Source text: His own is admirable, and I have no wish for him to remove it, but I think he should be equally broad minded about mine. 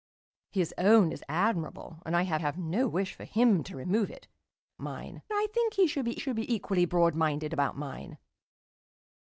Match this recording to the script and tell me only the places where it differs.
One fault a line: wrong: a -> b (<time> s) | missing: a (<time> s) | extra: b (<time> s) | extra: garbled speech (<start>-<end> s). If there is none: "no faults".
extra: have (2.3 s)
wrong: but -> mine (4.8 s)
extra: should be (6.2 s)